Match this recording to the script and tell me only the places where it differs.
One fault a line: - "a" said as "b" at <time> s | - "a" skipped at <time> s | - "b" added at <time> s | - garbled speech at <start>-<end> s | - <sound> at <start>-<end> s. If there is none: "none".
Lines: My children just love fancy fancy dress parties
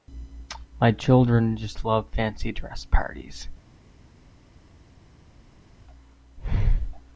- "fancy" skipped at 2.5 s